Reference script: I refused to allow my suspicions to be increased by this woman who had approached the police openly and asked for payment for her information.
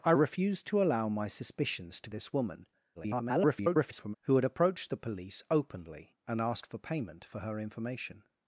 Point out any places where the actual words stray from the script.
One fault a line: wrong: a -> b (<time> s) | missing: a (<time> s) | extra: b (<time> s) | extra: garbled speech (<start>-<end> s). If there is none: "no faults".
missing: be increased by (2.1 s)
extra: garbled speech (2.9-4.1 s)